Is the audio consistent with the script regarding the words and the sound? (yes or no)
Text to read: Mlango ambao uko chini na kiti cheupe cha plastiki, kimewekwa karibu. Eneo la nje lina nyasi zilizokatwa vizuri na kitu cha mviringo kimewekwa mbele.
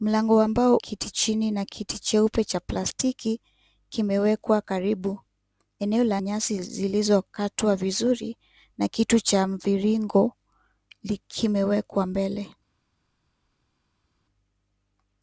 no